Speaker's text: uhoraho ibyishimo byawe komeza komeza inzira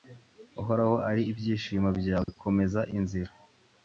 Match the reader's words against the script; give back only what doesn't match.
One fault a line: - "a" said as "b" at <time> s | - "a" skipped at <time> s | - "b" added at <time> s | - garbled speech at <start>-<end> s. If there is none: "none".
- "ari" added at 1.1 s
- "komeza" skipped at 2.8 s